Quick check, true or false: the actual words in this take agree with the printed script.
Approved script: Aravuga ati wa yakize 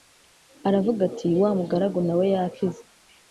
false